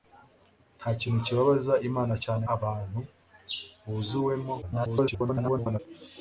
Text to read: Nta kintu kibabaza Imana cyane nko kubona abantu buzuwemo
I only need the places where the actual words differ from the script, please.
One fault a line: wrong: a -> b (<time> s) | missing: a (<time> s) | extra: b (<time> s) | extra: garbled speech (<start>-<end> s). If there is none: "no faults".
missing: nko kubona (2.5 s)
extra: garbled speech (4.6-5.8 s)